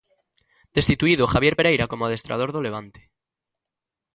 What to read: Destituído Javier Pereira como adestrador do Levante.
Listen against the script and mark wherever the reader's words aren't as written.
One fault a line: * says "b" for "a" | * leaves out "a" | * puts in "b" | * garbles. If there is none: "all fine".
all fine